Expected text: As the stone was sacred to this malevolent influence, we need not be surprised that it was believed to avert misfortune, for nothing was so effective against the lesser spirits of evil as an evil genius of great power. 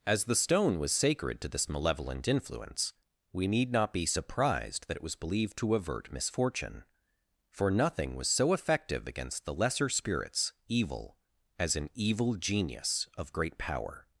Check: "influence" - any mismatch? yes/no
no